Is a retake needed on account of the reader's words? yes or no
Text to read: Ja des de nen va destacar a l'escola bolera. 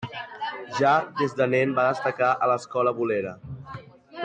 no